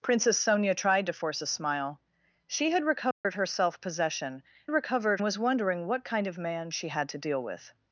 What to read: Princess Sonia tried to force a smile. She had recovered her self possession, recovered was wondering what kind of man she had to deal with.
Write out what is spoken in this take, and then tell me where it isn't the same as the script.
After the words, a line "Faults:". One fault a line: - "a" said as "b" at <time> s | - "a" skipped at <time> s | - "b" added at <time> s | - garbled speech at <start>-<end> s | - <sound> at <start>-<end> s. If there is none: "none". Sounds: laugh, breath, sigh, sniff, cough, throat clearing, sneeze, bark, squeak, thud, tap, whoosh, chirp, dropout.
Princess Sonia tried to force a smile. She had recovered her self possession, recovered was wondering what kind of man she had to deal with.
Faults:
- dropout at 3.1-3.2 s